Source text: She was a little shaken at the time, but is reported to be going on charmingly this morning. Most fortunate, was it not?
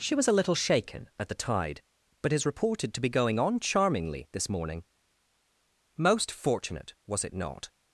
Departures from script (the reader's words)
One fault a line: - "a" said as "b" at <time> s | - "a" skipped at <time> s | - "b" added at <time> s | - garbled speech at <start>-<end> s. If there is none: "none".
- "time" said as "tide" at 1.4 s